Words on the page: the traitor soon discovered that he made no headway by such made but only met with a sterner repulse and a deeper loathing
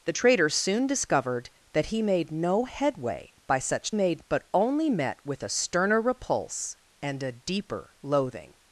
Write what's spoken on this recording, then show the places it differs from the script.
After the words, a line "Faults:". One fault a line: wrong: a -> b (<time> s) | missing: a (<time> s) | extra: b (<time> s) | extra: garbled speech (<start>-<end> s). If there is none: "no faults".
the traitor soon discovered that he made no headway by such made but only met with a sterner repulse and a deeper loathing
Faults:
no faults